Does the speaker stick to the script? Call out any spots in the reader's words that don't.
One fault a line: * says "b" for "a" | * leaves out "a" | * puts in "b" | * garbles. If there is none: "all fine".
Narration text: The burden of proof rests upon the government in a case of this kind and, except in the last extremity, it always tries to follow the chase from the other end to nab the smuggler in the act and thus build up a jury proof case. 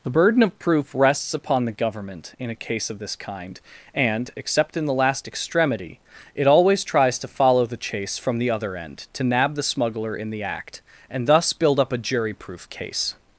all fine